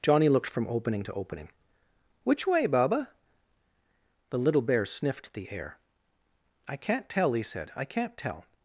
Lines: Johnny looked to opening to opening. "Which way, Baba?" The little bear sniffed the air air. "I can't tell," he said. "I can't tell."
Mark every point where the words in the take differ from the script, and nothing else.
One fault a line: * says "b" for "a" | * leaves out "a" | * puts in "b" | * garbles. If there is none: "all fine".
* says "from" for "to"
* leaves out "air"